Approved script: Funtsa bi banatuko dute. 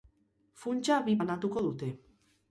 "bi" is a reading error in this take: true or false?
false